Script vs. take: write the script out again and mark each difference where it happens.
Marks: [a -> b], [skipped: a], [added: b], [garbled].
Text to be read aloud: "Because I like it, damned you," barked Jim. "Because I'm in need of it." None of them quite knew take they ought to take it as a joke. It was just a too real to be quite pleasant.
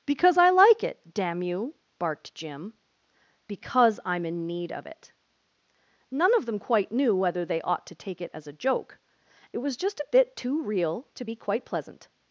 "Because I like it, [damned -> damn] you," barked Jim. "Because I'm in need of it." None of them quite knew [take -> whether] they ought to take it as a joke. It was just a [added: bit] too real to be quite pleasant.